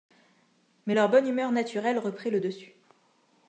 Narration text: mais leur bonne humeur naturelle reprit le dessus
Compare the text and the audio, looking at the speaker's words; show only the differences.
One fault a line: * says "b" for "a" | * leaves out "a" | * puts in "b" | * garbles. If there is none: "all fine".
all fine